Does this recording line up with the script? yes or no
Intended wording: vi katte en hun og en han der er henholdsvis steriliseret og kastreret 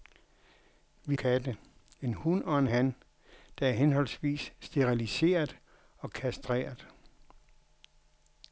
yes